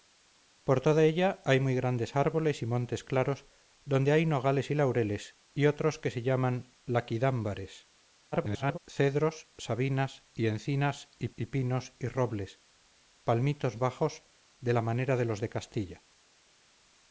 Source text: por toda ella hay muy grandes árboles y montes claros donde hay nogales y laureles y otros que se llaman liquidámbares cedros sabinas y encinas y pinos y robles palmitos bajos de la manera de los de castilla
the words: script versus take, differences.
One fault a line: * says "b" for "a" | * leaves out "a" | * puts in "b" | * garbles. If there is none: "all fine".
* garbles
* puts in "y"